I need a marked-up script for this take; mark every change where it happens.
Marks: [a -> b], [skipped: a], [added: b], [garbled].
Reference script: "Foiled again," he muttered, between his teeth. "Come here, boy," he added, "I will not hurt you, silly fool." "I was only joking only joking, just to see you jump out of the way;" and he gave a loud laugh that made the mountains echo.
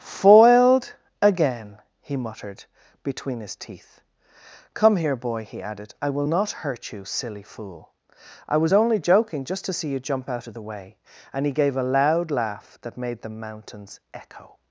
"Foiled again," he muttered, between his teeth. "Come here, boy," he added, "I will not hurt you, silly fool." "I was only joking [skipped: only joking,] just to see you jump out of the way;" and he gave a loud laugh that made the mountains echo.